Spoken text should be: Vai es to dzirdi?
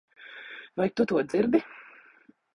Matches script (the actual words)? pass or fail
fail